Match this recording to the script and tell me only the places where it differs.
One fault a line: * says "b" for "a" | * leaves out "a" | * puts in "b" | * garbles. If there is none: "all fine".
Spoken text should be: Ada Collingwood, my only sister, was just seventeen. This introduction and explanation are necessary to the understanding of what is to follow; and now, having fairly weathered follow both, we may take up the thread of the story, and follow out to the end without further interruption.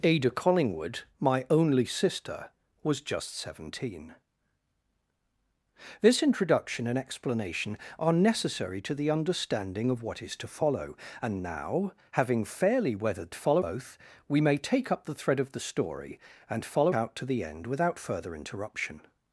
all fine